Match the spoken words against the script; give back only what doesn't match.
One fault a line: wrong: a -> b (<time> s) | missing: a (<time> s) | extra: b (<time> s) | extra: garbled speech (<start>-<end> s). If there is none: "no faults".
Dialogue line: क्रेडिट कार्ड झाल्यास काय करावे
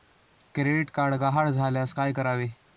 extra: गहाळ (1.1 s)